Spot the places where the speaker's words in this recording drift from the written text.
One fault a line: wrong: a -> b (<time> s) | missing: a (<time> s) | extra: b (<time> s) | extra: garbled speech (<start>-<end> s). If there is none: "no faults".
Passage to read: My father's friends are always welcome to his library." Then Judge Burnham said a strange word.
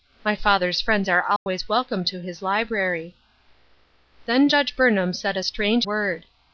no faults